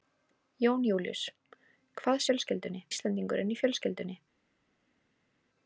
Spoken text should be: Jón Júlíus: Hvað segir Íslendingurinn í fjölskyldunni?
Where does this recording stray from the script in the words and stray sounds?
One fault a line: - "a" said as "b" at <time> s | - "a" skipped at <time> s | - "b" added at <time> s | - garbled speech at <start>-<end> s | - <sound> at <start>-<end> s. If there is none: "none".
- "segir" said as "fjölskyldunni" at 2.3 s